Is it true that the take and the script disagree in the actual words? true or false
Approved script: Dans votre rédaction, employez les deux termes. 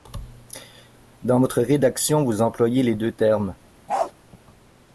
true